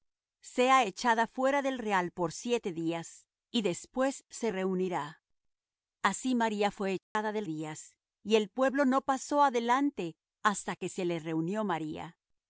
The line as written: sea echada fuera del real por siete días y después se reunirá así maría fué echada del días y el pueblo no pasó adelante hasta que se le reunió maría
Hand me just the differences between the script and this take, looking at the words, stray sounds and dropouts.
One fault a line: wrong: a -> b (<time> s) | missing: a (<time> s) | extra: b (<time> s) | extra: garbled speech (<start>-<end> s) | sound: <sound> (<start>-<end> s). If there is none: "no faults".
sound: dropout (7.0-7.2 s)